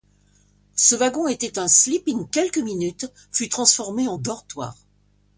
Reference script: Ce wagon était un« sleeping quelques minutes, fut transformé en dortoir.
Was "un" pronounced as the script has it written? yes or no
yes